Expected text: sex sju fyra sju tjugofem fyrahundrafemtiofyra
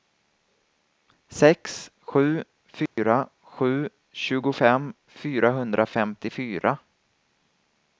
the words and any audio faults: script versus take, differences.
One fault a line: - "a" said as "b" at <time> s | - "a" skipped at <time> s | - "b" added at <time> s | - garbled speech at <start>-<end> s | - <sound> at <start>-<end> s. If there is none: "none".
- dropout at 2.9-3.0 s